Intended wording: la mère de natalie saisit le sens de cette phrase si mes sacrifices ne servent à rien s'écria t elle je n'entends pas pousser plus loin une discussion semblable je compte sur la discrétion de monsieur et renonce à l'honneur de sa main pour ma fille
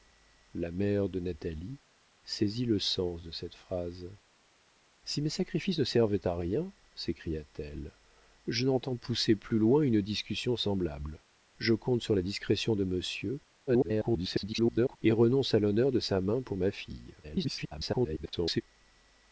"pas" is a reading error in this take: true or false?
true